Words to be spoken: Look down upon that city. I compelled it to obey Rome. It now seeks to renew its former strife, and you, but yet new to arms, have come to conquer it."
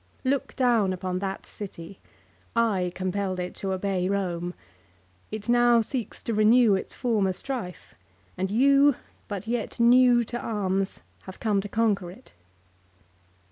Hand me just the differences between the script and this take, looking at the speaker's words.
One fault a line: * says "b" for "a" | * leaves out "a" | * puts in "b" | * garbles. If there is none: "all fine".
all fine